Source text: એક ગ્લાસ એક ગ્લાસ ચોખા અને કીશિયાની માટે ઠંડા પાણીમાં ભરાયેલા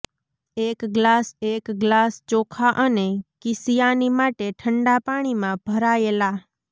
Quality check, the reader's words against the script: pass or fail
pass